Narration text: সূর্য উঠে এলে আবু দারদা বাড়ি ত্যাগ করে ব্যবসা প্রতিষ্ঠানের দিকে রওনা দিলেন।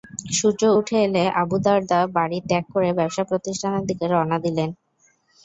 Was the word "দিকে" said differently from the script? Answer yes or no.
no